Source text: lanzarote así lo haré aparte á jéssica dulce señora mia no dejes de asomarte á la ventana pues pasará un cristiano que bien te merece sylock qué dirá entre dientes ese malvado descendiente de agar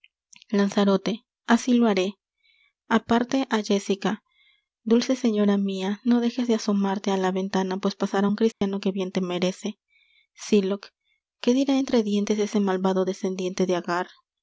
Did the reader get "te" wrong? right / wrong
right